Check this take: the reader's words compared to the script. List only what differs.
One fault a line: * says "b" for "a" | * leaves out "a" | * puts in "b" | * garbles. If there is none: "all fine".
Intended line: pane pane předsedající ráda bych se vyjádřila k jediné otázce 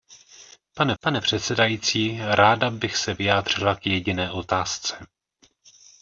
all fine